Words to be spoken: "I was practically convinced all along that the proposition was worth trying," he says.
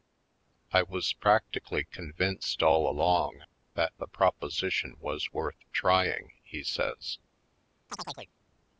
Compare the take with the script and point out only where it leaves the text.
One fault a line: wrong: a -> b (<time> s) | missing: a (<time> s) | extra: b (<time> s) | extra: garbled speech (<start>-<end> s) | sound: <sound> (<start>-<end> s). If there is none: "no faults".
sound: chirp (7.9-8.3 s)